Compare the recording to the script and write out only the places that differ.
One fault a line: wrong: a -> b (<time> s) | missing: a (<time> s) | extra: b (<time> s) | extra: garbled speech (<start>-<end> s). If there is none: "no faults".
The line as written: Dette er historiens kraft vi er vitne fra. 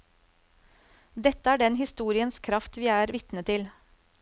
extra: den (1.6 s)
wrong: fra -> til (3.5 s)